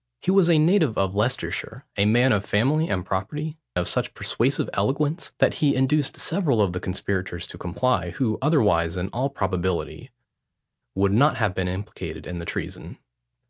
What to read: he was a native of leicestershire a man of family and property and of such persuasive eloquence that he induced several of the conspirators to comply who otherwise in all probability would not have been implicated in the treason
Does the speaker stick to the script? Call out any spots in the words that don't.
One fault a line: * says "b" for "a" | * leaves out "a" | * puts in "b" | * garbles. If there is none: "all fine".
* leaves out "and"